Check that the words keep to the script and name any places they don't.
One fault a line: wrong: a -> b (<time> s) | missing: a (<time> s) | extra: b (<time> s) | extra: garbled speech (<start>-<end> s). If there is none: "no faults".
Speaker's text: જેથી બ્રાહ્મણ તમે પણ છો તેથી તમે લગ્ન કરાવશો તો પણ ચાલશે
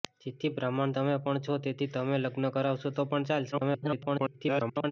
extra: garbled speech (3.5-4.9 s)